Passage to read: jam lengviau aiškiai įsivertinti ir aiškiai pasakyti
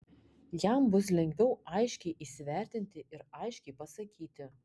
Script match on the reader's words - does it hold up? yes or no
no